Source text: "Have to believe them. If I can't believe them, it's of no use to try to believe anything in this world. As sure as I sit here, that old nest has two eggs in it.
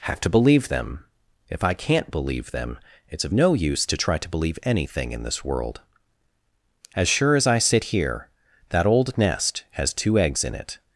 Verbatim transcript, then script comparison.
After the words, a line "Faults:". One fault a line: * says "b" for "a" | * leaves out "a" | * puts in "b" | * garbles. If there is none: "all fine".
"Have to believe them. If I can't believe them, it's of no use to try to believe anything in this world. As sure as I sit here, that old nest has two eggs in it.
Faults:
all fine